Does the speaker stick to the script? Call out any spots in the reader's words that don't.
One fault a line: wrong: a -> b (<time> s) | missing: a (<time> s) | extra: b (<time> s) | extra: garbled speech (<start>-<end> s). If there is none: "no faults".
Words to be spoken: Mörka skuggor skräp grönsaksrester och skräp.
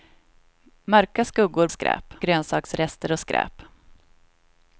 no faults